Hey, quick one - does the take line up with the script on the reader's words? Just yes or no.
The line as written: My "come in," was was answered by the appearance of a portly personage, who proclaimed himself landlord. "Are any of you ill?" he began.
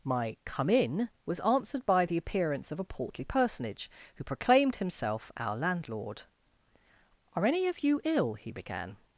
no